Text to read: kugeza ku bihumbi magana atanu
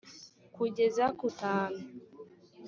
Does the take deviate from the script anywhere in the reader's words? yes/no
yes